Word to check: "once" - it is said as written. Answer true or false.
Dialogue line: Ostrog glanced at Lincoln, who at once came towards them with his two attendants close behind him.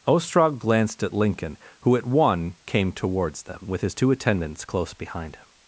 false